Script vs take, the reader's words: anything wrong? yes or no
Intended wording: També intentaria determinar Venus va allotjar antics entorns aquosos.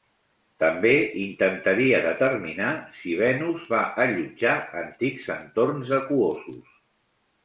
yes